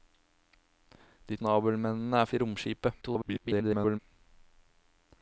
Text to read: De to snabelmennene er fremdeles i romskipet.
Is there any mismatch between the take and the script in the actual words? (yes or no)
yes